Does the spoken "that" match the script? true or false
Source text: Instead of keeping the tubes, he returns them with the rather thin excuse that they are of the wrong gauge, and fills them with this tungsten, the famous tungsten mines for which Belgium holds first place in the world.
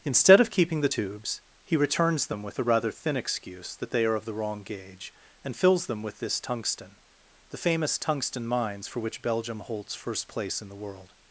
true